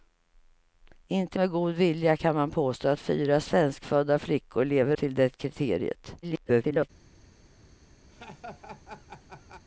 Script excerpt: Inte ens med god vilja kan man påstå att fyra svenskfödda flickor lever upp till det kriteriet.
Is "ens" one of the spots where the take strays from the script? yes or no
yes